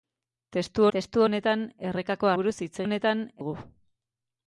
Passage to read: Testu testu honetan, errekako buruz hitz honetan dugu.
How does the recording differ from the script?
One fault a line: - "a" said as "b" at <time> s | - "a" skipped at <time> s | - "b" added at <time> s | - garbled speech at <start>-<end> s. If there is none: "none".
none